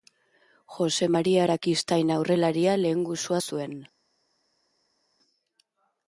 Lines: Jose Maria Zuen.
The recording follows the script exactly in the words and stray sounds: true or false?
false